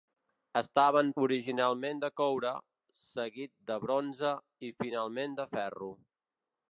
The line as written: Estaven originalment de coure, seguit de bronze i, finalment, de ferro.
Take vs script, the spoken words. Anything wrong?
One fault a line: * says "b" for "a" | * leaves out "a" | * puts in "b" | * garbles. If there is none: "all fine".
all fine